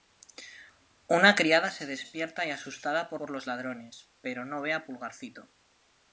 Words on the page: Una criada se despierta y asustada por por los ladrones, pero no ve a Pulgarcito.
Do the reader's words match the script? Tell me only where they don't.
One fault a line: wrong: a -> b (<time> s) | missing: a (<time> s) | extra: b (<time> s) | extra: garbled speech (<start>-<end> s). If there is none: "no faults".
no faults